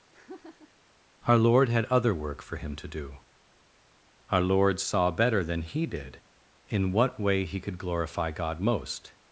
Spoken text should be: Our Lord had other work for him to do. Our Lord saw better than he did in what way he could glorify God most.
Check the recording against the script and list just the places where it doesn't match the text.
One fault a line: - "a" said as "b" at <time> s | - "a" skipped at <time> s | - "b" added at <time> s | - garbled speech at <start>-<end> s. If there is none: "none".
none